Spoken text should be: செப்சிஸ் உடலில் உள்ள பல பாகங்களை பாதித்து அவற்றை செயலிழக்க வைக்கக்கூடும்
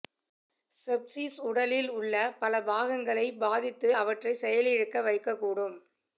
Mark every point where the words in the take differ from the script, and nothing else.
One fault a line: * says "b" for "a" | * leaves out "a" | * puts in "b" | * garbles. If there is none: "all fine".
all fine